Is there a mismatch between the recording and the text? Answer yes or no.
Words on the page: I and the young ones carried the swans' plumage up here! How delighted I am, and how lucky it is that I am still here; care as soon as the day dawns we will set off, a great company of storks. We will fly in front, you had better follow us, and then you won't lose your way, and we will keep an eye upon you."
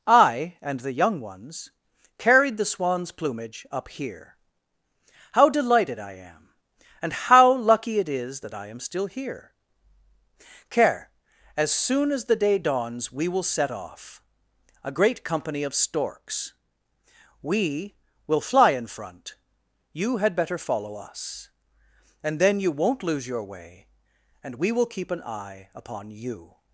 no